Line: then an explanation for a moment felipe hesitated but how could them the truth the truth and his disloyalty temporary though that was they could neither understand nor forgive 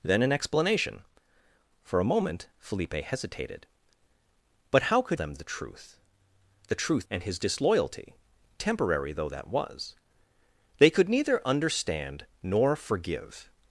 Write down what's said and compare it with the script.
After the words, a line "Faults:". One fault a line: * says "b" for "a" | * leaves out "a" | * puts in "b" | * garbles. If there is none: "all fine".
then an explanation for a moment felipe hesitated but how could them the truth the truth and his disloyalty temporary though that was they could neither understand nor forgive
Faults:
all fine